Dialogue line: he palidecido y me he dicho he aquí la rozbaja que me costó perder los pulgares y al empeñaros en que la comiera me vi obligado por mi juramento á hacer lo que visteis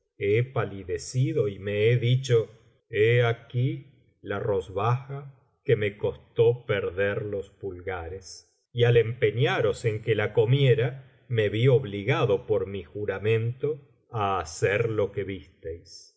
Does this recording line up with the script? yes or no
yes